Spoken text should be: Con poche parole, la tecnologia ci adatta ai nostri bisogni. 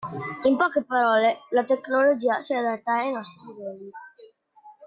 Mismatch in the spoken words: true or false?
true